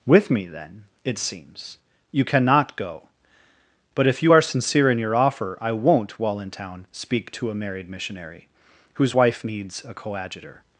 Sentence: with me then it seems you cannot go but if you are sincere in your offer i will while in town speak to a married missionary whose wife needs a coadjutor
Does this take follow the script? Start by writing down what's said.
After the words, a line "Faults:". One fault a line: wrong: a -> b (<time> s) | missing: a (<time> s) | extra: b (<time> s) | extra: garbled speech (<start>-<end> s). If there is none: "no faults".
with me then it seems you cannot go but if you are sincere in your offer i won't while in town speak to a married missionary whose wife needs a coadjutor
Faults:
wrong: will -> won't (5.7 s)